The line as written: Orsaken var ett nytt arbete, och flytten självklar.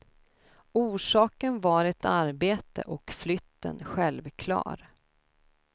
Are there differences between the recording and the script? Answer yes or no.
yes